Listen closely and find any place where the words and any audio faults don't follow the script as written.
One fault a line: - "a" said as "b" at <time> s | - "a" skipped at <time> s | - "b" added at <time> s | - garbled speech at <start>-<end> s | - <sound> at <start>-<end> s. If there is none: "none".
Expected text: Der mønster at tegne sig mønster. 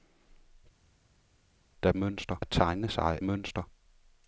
none